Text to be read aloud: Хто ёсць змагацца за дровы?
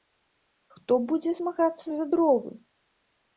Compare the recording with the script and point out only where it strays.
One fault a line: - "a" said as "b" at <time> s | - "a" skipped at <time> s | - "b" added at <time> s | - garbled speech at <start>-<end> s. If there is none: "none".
- "ёсць" said as "будзе" at 1.1 s